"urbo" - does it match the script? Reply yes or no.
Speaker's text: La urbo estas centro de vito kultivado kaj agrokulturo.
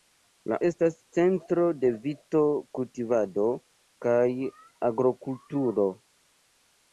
no